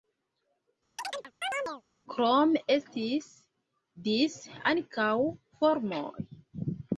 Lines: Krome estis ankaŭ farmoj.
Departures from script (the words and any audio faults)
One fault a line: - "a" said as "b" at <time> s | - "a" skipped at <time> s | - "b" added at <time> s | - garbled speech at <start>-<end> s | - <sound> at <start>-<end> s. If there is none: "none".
- chirp at 1.0-1.8 s
- "dise" added at 4.1 s